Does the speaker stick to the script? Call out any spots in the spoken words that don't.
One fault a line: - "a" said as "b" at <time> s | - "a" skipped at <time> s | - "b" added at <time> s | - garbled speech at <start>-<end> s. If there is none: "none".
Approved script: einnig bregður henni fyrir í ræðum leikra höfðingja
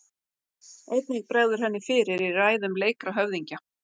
none